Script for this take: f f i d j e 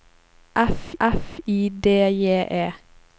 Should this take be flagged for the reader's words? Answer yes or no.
no